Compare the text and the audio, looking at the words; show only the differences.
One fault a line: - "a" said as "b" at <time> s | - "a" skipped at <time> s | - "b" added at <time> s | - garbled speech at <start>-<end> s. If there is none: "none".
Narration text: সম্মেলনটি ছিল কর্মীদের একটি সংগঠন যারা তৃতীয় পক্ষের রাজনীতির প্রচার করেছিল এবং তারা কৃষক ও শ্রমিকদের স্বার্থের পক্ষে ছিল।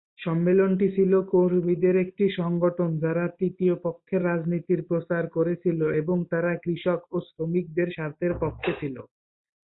none